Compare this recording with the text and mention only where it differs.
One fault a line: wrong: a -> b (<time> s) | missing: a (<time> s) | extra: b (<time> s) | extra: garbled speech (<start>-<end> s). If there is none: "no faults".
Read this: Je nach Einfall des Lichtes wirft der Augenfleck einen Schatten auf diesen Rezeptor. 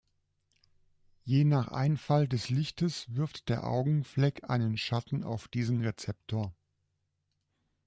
no faults